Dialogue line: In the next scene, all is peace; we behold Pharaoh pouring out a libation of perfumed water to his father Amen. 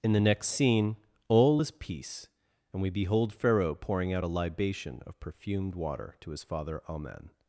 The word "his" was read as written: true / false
true